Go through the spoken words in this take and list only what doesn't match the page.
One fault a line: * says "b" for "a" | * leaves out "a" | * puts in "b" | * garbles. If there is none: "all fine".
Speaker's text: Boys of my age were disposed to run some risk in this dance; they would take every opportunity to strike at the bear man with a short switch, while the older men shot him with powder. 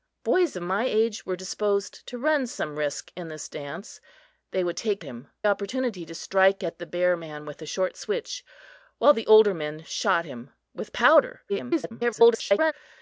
* says "him" for "every"
* garbles